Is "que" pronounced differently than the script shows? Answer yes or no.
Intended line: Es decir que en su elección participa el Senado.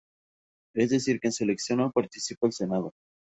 no